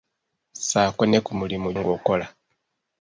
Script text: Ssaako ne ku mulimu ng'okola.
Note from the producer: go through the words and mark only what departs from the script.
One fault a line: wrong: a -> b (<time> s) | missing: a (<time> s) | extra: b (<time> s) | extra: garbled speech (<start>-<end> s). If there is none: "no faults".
no faults